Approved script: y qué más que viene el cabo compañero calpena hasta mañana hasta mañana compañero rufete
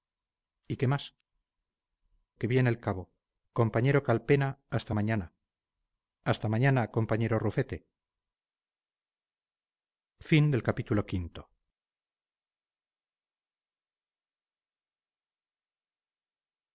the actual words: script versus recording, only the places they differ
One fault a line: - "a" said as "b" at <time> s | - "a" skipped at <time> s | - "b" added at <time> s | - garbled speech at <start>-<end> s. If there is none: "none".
none